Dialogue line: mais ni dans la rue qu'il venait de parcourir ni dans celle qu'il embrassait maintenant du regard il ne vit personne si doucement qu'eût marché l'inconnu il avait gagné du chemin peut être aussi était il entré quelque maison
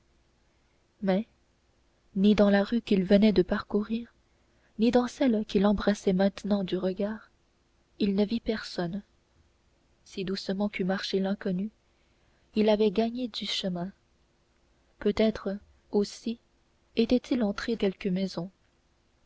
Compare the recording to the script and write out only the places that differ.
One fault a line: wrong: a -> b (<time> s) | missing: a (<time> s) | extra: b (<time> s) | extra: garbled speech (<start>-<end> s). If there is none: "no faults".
no faults